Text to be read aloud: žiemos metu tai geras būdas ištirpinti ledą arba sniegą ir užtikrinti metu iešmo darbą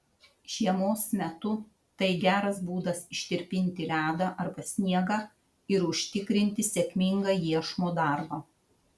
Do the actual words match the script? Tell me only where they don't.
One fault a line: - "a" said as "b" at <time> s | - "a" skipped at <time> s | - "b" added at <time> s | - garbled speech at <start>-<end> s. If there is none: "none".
- "metu" said as "sėkmingą" at 6.7 s